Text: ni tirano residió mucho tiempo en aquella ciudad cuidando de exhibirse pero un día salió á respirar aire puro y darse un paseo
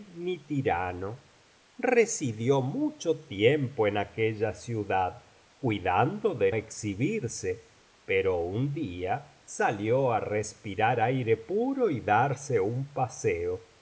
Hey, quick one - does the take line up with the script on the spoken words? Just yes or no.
yes